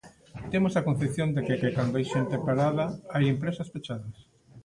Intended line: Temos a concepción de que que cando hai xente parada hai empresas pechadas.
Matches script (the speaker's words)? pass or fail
pass